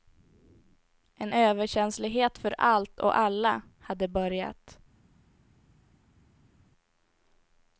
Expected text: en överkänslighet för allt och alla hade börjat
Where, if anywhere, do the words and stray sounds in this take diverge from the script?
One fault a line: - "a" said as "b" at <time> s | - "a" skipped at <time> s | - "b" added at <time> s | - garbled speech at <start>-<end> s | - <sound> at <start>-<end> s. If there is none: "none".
none